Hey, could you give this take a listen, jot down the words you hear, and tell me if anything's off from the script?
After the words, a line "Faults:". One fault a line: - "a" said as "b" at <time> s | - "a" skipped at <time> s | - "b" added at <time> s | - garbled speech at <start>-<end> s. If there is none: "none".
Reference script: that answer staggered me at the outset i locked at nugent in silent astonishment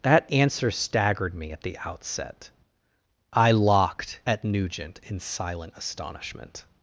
that answer staggered me at the outset i locked at nugent in silent astonishment
Faults:
none